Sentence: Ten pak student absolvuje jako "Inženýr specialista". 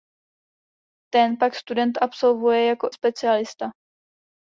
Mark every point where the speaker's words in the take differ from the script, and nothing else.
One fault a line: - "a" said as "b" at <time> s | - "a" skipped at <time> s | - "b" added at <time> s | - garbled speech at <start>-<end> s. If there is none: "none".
- "Inženýr" skipped at 2.9 s